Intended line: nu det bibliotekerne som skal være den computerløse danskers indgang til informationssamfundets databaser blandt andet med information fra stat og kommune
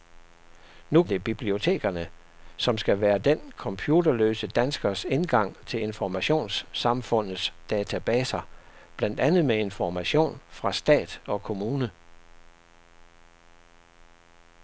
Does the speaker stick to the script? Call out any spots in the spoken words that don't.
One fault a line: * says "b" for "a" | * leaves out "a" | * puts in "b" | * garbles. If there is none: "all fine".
all fine